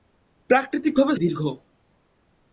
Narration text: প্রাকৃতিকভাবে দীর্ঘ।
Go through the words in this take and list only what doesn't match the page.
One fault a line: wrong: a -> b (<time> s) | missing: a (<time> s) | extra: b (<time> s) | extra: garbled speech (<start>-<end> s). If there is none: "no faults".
no faults